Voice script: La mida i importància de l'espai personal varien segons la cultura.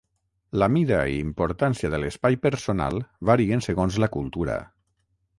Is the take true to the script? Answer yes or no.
yes